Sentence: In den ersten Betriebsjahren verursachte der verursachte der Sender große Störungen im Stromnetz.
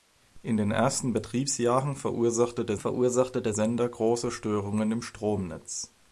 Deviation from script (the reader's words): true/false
false